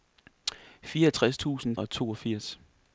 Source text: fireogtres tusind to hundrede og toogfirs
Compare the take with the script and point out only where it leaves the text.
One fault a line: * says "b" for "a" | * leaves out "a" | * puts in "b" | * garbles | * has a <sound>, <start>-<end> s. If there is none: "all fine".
* leaves out "to hundrede"